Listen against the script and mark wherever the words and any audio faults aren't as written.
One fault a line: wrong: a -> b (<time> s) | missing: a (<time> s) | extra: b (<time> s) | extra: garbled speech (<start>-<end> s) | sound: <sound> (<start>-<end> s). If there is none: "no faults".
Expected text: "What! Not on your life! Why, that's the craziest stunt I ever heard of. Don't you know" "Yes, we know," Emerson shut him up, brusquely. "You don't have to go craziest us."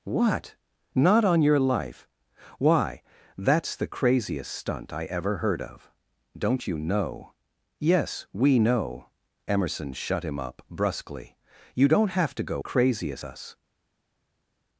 no faults